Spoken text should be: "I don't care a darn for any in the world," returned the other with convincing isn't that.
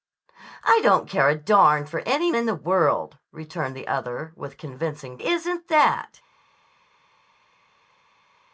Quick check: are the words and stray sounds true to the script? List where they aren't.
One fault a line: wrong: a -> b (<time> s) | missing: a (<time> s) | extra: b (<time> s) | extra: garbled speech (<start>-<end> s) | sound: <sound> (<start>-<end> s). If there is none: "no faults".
no faults